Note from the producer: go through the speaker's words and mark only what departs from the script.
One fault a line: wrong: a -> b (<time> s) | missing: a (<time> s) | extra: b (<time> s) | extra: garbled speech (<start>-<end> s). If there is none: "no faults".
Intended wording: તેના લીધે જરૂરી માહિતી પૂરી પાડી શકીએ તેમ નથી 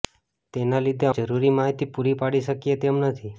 no faults